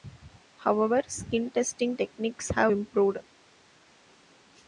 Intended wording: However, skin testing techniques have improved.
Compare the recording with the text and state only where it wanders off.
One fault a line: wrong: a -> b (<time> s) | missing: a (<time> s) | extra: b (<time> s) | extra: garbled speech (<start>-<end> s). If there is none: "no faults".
no faults